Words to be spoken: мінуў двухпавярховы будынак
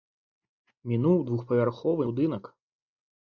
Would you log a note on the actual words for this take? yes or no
no